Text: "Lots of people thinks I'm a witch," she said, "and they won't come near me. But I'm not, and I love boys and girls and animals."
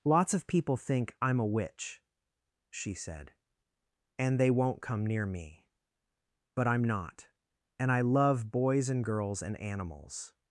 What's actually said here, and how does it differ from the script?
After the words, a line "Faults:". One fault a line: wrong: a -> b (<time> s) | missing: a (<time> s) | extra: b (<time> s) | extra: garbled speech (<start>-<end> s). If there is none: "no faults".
"Lots of people think I'm a witch," she said, "and they won't come near me. But I'm not, and I love boys and girls and animals."
Faults:
wrong: thinks -> think (0.8 s)